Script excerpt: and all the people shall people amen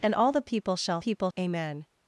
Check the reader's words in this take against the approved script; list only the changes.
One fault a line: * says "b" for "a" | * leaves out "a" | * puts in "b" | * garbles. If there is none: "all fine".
all fine